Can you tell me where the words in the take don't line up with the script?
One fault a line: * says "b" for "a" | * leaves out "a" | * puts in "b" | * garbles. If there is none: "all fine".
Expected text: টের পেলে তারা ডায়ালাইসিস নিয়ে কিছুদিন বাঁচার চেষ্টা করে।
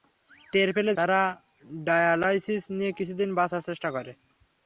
all fine